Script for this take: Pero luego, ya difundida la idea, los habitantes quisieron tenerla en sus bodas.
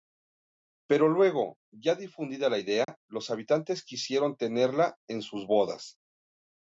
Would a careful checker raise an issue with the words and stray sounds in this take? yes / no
yes